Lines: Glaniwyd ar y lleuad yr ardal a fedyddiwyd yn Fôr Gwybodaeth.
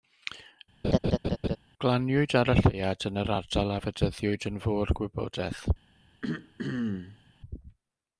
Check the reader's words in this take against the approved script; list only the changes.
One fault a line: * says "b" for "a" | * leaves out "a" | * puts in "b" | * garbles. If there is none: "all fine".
* puts in "yn"